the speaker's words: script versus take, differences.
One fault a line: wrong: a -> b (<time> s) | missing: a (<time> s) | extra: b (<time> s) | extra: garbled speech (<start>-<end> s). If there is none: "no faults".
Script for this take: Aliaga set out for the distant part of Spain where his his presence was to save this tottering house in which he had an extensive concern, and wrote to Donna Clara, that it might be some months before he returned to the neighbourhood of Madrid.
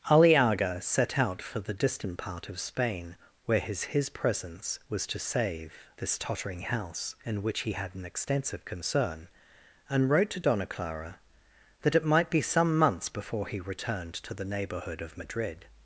no faults